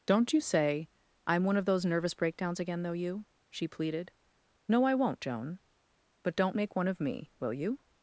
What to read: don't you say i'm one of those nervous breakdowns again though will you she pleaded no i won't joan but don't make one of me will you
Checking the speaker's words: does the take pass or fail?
fail